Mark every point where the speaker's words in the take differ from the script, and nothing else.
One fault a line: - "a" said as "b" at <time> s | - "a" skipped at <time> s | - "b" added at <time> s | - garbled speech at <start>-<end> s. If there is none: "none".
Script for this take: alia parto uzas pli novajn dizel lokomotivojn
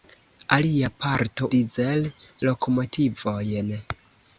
- "uzas pli novajn" skipped at 1.5 s